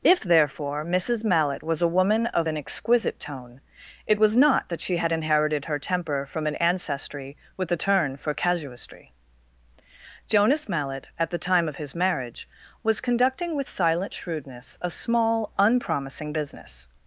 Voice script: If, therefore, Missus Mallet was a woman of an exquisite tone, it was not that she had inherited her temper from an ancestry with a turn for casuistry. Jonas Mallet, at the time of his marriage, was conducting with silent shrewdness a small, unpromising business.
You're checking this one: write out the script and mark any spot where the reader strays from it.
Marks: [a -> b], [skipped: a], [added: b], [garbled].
If, therefore, Missus Mallet was a woman of an exquisite tone, it was not that she had inherited her temper from an ancestry with a turn for casuistry. Jonas Mallet, at the time of his marriage, was conducting with silent shrewdness a small, unpromising business.